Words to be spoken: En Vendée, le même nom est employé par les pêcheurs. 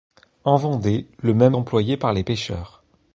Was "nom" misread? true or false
true